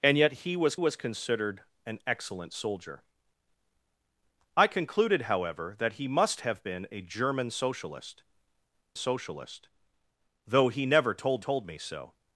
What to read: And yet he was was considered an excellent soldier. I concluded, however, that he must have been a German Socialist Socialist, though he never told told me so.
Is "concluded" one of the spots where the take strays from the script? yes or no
no